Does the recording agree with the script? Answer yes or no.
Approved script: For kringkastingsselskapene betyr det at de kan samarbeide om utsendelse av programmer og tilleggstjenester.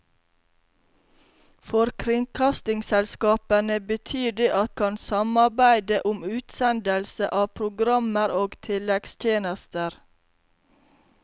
no